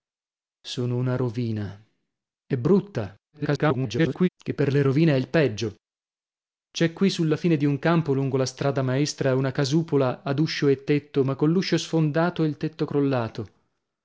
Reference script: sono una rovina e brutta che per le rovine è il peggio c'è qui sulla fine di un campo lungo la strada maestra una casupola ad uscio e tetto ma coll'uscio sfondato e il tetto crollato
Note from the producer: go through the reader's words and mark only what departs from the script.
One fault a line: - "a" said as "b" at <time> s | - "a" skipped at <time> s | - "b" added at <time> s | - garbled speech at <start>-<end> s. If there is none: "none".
- garbled speech at 3.3-4.3 s